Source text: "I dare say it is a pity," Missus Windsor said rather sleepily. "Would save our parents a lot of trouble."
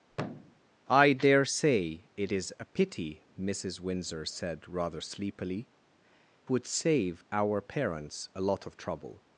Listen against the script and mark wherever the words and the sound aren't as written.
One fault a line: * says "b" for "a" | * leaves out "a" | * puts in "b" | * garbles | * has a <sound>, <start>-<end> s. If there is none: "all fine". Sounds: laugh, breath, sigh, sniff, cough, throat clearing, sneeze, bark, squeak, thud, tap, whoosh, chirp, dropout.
* has a thud, 0.1-0.6 s